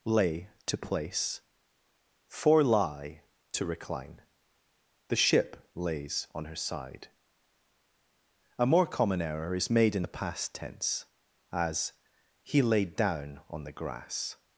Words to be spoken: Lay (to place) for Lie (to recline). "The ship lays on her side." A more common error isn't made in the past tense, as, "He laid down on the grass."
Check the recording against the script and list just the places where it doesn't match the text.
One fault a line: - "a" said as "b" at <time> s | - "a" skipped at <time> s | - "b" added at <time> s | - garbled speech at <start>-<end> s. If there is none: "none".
- "isn't" said as "is" at 9.5 s